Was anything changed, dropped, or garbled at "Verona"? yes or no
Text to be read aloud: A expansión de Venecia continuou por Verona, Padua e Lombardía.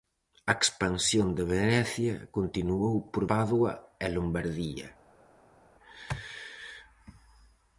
yes